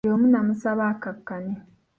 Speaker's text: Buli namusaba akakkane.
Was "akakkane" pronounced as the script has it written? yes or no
yes